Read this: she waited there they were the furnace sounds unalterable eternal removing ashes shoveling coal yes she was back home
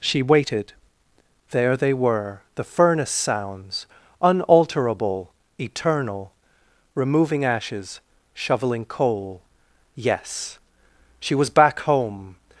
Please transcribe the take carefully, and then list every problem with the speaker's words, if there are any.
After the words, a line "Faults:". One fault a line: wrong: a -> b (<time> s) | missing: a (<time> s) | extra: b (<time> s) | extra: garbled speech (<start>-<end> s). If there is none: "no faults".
she waited there they were the furnace sounds unalterable eternal removing ashes shoveling coal yes she was back home
Faults:
no faults